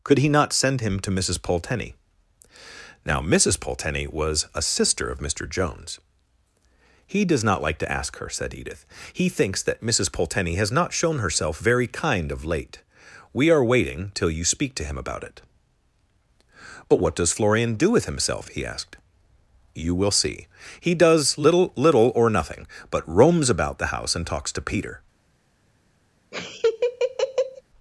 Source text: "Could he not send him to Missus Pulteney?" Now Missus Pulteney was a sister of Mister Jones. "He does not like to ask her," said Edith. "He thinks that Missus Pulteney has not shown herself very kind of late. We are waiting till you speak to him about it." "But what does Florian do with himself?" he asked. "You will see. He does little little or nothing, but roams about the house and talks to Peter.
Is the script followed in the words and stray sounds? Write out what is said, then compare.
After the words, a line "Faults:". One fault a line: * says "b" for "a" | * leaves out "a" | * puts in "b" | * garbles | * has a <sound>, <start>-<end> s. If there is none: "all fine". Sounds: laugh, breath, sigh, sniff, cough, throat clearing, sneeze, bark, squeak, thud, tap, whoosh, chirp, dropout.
"Could he not send him to Missus Pulteney?" Now Missus Pulteney was a sister of Mister Jones. "He does not like to ask her," said Edith. "He thinks that Missus Pulteney has not shown herself very kind of late. We are waiting till you speak to him about it." "But what does Florian do with himself?" he asked. "You will see. He does little little or nothing, but roams about the house and talks to Peter.
Faults:
* has a laugh, 26.3-27.6 s